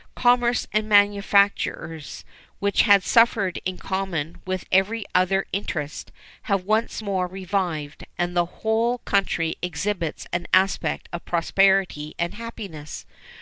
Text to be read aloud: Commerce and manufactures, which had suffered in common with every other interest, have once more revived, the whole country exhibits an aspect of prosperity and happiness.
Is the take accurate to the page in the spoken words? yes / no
no